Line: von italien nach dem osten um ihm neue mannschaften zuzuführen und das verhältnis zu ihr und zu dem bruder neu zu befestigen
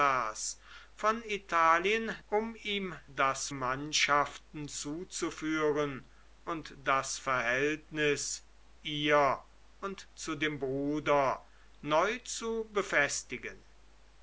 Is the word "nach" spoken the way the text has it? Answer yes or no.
no